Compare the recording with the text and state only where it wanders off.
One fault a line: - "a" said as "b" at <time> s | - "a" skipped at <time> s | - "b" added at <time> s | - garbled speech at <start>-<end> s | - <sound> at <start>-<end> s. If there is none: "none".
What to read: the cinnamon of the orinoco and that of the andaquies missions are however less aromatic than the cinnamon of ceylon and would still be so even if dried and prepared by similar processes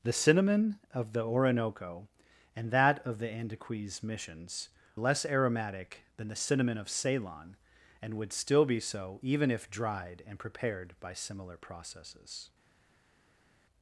- "are however" skipped at 4.7 s